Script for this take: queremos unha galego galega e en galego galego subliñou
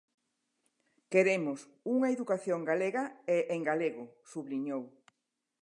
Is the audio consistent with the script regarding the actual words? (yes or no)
no